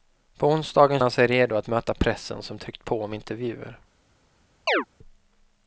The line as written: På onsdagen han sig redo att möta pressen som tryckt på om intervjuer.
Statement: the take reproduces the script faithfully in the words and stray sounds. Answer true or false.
false